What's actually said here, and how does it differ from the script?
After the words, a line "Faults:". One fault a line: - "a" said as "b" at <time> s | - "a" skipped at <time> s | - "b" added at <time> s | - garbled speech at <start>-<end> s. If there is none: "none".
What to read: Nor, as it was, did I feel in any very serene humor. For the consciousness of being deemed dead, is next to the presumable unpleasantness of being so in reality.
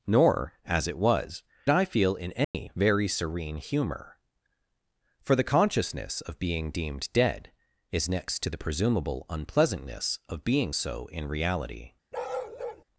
Nor, as it was, I feel in any very serene humor. For the consciousness of being deemed dead, is next to the presumable unpleasantness of being so in reality.
Faults:
- "did" skipped at 1.4 s